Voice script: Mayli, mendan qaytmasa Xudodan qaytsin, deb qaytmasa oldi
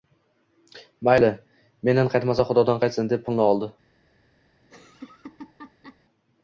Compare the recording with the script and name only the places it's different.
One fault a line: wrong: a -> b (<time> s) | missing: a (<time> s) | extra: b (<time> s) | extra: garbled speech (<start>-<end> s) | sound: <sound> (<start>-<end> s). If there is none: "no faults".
wrong: qaytmasa -> pulni (3.3 s)
sound: laugh (4.6-6.0 s)